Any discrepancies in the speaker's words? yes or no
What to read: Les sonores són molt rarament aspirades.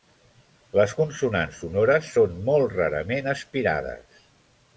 yes